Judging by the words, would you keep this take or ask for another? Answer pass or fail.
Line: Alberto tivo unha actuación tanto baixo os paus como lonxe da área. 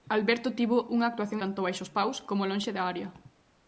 pass